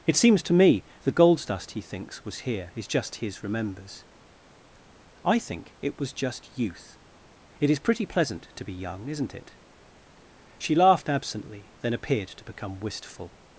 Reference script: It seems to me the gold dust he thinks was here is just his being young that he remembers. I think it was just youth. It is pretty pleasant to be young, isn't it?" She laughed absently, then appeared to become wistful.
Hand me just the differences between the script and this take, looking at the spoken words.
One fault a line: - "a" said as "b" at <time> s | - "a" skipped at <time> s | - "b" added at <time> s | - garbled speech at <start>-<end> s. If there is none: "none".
- "being young that he" skipped at 3.4 s